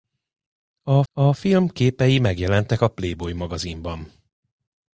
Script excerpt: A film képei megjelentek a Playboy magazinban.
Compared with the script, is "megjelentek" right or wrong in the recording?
right